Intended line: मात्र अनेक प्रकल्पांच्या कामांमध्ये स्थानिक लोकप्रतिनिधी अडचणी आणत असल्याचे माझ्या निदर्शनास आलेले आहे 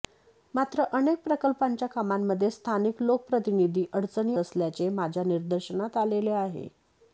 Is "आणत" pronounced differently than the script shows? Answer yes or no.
yes